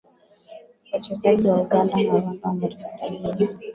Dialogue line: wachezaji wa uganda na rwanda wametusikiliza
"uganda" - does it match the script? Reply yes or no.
yes